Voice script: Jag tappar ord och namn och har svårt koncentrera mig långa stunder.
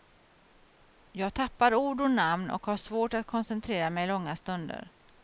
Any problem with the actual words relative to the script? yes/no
yes